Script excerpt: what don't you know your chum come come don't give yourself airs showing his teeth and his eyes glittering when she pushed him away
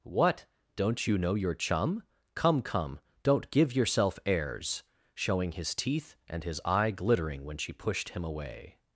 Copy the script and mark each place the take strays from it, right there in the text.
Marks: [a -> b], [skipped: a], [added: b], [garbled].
what don't you know your chum come come don't give yourself airs showing his teeth and his [eyes -> eye] glittering when she pushed him away